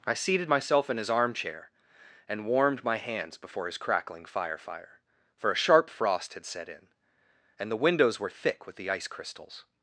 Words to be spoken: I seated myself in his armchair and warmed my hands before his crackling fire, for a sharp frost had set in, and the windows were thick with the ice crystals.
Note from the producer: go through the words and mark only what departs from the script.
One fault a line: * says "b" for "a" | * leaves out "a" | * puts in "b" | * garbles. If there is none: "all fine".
* puts in "fire"